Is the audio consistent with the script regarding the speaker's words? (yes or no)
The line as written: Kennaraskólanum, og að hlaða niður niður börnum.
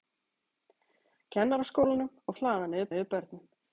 yes